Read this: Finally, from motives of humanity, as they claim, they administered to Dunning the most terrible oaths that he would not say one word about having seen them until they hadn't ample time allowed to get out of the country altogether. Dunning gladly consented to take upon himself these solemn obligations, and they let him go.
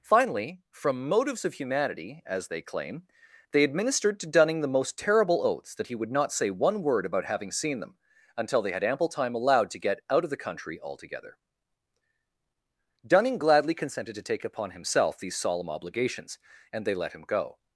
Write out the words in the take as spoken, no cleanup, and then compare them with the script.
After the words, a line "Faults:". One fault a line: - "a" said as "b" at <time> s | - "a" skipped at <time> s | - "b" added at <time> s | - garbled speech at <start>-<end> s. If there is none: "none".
Finally, from motives of humanity, as they claim, they administered to Dunning the most terrible oaths that he would not say one word about having seen them until they had ample time allowed to get out of the country altogether. Dunning gladly consented to take upon himself these solemn obligations, and they let him go.
Faults:
- "hadn't" said as "had" at 8.7 s